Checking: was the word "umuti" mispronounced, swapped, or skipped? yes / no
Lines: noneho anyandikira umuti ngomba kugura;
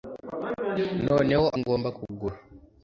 yes